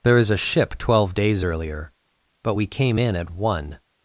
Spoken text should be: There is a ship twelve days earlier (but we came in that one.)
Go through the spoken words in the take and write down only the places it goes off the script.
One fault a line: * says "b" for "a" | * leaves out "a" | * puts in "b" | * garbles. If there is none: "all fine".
* says "at" for "that"